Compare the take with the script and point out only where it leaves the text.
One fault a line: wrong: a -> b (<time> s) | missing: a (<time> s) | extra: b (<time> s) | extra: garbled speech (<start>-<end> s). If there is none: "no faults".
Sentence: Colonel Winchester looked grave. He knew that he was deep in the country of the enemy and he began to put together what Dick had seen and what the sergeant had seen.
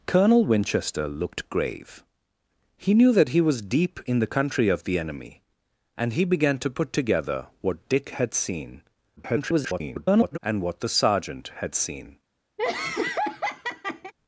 extra: garbled speech (9.2-10.4 s)